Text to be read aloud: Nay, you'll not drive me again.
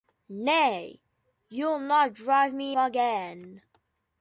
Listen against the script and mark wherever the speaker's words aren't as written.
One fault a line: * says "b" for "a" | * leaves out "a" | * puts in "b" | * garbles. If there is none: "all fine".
all fine